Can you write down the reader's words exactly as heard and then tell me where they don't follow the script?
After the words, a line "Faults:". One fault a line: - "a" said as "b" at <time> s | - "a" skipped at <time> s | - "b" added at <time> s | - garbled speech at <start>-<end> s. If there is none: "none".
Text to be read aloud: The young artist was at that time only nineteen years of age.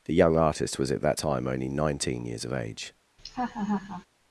The young artist was at that time only nineteen years of age.
Faults:
none